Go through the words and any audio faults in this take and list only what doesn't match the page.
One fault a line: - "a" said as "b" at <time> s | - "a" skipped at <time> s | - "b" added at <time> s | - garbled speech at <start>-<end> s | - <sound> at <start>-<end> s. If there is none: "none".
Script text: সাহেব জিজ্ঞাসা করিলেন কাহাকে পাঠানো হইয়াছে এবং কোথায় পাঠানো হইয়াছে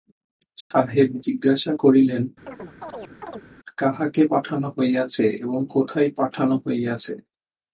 - dropout at 0.6-0.7 s
- chirp at 2.5-3.5 s